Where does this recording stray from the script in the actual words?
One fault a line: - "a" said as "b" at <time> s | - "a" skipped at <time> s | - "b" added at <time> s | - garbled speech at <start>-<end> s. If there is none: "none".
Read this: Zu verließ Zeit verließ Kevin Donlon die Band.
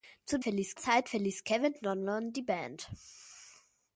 none